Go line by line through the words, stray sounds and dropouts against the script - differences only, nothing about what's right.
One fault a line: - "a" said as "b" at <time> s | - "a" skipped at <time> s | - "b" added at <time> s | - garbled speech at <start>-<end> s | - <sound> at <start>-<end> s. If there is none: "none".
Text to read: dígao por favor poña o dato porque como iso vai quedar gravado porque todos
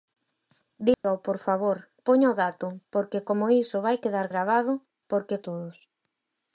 - dropout at 0.9-1.0 s